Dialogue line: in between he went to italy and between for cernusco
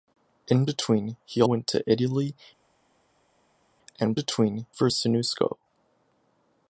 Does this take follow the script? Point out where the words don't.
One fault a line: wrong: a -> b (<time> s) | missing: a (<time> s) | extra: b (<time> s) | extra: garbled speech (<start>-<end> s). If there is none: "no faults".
no faults